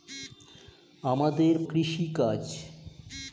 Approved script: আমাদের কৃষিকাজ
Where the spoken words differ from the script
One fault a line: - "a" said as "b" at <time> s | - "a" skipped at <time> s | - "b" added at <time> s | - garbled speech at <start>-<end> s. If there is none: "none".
none